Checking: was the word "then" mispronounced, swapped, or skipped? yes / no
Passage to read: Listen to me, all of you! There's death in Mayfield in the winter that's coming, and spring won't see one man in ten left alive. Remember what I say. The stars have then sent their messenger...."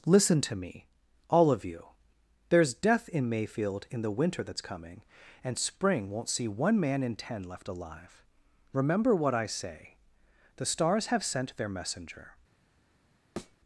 yes